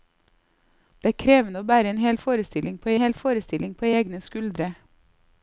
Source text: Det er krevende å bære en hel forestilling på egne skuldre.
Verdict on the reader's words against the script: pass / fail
fail